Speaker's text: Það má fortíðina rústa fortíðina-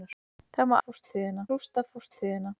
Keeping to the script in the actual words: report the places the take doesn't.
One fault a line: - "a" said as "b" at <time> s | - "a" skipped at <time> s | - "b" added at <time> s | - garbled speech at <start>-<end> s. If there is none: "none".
none